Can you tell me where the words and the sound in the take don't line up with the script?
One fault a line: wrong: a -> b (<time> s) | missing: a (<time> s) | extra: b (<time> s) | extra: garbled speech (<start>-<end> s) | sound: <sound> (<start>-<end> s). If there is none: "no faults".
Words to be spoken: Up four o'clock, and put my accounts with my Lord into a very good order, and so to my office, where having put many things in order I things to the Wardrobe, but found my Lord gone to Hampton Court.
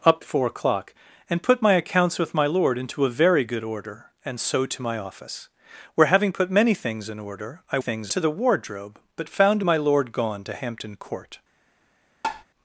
sound: tap (12.2-12.4 s)